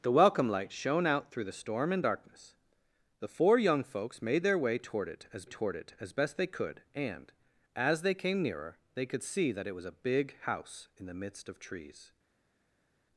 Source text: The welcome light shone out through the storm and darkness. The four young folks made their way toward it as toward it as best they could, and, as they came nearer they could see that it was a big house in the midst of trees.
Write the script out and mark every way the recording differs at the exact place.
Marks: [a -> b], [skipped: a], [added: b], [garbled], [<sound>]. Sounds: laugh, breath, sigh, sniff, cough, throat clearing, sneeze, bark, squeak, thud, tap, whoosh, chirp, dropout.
The welcome light shone out through the storm and darkness. The four young folks made their way toward it as toward it as best they could, and, as they came nearer they could see that it was a big house in the midst of trees.